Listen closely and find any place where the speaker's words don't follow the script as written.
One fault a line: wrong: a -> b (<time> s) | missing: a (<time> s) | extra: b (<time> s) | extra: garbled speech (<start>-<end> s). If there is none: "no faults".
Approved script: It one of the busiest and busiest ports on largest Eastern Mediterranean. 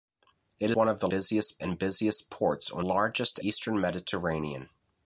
no faults